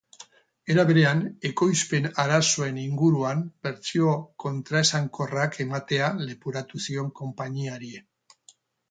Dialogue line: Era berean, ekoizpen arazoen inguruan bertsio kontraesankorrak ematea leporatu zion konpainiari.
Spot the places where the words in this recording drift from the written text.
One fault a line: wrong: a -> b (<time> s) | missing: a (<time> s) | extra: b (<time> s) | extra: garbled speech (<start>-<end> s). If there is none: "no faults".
no faults